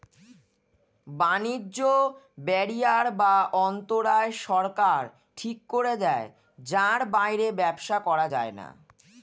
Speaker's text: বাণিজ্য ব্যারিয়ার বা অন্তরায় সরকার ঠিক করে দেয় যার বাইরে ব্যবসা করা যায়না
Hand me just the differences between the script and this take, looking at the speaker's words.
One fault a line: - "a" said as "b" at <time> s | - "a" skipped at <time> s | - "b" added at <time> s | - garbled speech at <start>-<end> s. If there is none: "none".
none